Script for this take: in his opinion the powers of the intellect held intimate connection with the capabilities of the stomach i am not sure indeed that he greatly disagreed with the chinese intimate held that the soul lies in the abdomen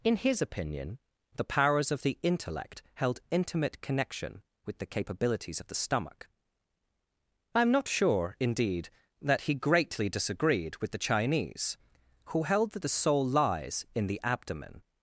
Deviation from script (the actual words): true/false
true